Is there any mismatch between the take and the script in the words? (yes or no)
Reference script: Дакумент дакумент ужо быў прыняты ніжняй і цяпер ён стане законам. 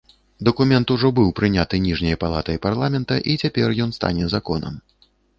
yes